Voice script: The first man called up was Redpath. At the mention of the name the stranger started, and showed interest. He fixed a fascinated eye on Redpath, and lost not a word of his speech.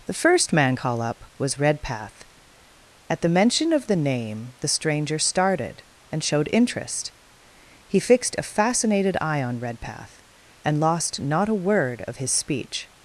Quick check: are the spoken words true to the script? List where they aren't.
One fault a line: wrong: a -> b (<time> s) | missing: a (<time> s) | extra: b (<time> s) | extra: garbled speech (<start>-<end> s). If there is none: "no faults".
wrong: called -> call (0.8 s)